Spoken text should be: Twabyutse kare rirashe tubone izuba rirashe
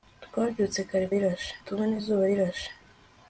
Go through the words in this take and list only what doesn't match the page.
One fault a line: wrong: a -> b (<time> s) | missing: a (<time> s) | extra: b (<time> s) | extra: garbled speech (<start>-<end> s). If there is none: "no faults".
no faults